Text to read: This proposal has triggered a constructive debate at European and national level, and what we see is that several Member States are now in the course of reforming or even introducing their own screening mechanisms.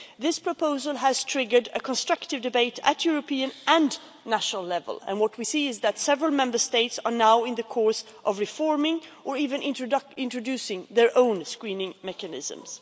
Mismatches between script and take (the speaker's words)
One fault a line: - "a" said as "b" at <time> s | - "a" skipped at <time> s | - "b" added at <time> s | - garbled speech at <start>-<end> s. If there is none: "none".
none